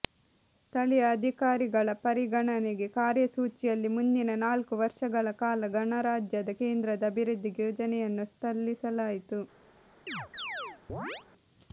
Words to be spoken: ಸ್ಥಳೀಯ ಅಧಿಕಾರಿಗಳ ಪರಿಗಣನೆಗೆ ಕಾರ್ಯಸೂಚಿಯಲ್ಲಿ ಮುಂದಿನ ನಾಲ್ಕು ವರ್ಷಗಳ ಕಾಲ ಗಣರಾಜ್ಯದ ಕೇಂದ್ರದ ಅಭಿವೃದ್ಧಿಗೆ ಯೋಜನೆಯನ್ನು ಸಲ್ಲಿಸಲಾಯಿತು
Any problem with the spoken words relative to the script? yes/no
no